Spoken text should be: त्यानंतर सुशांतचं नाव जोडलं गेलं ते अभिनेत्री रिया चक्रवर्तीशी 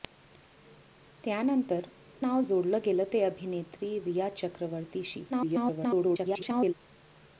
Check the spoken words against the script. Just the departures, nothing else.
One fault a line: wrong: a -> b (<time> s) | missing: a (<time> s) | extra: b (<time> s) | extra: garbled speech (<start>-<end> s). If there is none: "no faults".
missing: सुशांतचं (1.9 s)
extra: garbled speech (5.3-6.7 s)